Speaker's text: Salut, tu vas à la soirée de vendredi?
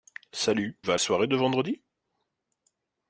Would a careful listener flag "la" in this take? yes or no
yes